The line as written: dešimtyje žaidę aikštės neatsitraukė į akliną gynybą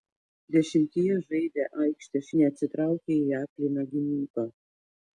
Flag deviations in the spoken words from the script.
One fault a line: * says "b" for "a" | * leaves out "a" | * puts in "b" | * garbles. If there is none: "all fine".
all fine